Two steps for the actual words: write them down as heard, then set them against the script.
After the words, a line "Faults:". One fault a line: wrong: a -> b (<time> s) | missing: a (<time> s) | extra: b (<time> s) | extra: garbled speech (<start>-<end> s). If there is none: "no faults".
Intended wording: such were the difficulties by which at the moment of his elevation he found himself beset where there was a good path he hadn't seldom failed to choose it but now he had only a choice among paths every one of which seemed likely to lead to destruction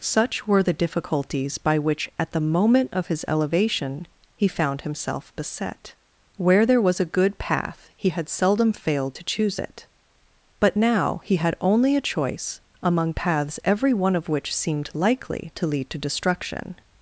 such were the difficulties by which at the moment of his elevation he found himself beset where there was a good path he had seldom failed to choose it but now he had only a choice among paths every one of which seemed likely to lead to destruction
Faults:
wrong: hadn't -> had (8.1 s)